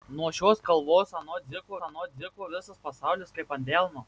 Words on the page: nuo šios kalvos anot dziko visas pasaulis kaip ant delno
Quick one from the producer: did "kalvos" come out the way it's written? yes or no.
yes